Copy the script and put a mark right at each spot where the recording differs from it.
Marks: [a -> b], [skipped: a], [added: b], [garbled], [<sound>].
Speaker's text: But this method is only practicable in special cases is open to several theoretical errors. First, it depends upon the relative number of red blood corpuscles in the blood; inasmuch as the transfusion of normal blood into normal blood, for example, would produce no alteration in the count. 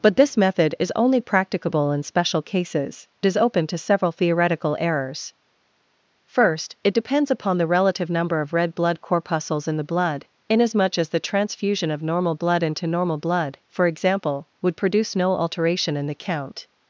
But this method is only practicable in special cases is open to several theoretical errors. First, it depends upon the relative number of red blood corpuscles in the blood; inasmuch as the transfusion of normal blood into normal blood, for example, would produce no alteration in the count.